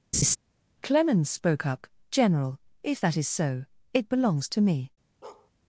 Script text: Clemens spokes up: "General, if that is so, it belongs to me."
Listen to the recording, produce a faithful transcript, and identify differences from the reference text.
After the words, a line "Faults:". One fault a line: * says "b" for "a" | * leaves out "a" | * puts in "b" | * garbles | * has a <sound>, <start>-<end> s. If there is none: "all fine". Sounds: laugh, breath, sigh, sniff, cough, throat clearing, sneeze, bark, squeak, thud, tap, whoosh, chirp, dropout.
Clemens spoke up: "General, if that is so, it belongs to me."
Faults:
* has a laugh, 0.1-0.4 s
* says "spoke" for "spokes"
* has a bark, 5.2-5.5 s